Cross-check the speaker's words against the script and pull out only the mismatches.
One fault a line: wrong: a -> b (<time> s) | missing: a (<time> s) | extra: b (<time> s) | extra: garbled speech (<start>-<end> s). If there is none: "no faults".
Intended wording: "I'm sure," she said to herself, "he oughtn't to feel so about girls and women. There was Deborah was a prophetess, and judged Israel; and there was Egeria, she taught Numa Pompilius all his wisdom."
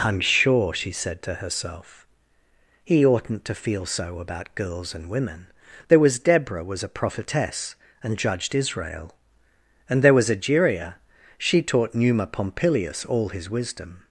no faults